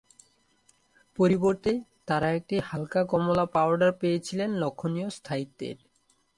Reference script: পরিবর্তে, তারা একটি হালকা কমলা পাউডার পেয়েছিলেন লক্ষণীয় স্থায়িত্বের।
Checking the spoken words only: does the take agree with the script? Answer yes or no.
yes